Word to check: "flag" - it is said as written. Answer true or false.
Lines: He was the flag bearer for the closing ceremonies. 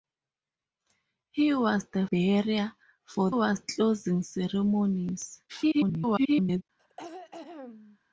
false